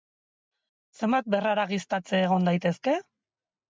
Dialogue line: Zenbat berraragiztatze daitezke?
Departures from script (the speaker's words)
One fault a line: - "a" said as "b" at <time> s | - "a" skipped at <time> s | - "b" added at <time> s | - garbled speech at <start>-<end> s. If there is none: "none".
- "egon" added at 2.2 s